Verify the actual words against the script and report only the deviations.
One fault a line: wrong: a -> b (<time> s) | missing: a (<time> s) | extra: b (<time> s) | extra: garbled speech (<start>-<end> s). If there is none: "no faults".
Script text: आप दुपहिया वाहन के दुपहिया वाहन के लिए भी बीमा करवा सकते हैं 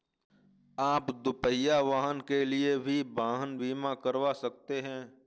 missing: दुपहिया वाहन के (2.4 s)
extra: वाहन (3.1 s)